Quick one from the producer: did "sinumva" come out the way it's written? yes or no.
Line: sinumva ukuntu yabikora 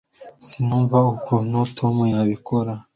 yes